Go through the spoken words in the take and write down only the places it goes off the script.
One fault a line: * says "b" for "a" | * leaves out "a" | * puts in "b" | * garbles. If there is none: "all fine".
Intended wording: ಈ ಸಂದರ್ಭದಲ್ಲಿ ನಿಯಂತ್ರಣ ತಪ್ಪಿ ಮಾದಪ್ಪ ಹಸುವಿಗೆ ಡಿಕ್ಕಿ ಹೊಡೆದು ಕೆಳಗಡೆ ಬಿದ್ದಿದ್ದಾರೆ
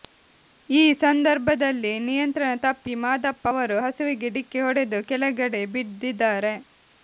* puts in "ಅವರು"